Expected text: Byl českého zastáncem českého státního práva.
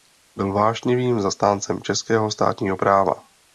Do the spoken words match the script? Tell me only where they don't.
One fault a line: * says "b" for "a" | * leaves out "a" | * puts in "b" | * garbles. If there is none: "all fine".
* says "vášnivým" for "českého"